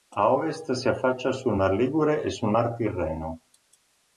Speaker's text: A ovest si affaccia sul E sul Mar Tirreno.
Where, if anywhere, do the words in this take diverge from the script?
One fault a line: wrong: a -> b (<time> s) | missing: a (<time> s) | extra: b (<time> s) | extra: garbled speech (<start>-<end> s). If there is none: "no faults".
extra: Mar Ligure (1.5 s)